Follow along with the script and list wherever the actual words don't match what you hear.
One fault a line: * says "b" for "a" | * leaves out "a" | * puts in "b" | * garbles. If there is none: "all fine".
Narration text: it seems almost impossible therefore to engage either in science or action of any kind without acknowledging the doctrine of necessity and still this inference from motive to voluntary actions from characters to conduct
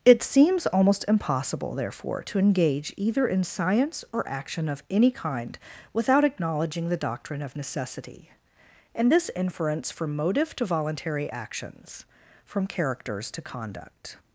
* leaves out "still"